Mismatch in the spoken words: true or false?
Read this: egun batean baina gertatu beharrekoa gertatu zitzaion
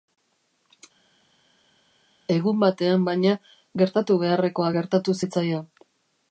false